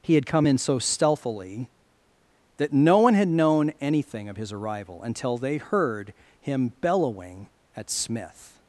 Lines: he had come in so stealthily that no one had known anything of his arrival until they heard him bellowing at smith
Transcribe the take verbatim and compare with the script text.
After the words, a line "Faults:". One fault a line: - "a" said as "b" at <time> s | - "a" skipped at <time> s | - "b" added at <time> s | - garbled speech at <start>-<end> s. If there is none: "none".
he had come in so stealthily that no one had known anything of his arrival until they heard him bellowing at smith
Faults:
none